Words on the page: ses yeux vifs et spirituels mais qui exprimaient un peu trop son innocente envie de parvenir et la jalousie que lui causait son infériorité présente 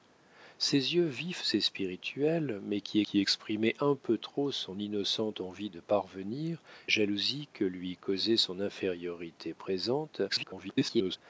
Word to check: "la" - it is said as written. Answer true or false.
false